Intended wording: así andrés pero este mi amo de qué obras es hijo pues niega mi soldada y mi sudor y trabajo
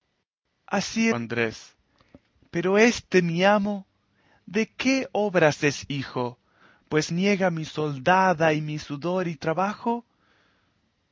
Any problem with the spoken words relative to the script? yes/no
no